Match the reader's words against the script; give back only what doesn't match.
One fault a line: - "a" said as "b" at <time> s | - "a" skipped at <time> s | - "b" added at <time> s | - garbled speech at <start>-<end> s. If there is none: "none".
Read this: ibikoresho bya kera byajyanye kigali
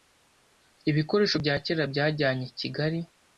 none